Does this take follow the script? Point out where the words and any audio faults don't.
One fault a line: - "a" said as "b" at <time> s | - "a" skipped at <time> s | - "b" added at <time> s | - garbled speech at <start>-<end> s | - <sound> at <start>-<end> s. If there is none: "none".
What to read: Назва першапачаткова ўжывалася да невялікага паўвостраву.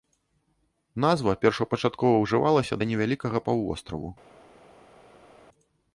none